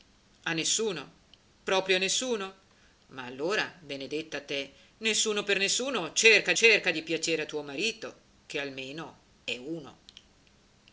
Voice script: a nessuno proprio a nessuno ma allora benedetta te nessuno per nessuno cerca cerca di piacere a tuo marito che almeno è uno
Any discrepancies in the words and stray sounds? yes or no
no